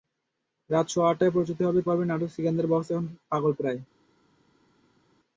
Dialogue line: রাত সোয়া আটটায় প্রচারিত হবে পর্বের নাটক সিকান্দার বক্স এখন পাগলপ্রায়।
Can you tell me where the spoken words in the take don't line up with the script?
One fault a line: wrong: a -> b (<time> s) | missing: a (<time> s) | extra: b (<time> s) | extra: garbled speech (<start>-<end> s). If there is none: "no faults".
no faults